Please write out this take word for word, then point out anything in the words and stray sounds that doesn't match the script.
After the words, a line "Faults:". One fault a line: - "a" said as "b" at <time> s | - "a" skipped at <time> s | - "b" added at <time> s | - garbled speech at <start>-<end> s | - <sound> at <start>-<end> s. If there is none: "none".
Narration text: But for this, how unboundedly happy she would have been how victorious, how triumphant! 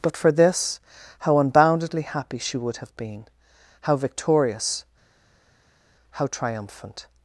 But for this, how unboundedly happy she would have been how victorious, how triumphant!
Faults:
none